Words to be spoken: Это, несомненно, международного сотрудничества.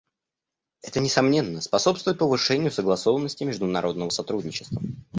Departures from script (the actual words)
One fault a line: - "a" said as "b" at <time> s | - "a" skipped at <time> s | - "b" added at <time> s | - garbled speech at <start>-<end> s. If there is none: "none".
- "способствует повышению согласованности" added at 1.6 s